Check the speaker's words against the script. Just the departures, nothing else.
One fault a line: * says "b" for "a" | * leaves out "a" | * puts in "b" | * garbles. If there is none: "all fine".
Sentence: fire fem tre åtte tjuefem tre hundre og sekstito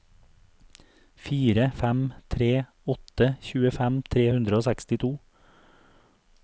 all fine